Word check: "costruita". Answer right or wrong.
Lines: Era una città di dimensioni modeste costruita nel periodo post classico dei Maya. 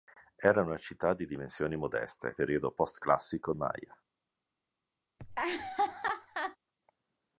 wrong